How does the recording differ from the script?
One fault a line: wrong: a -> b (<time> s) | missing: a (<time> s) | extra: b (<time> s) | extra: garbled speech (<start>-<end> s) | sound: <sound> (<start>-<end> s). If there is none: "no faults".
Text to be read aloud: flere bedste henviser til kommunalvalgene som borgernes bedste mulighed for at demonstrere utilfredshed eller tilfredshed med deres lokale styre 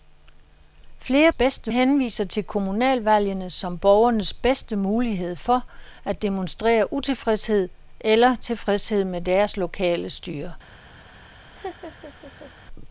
sound: laugh (11.5-12.5 s)